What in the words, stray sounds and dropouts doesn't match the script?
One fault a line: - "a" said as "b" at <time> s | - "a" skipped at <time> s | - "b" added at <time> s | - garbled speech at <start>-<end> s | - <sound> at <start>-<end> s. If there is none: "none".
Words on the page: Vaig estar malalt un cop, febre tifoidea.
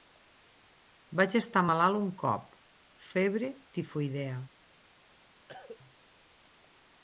- cough at 5.5-5.8 s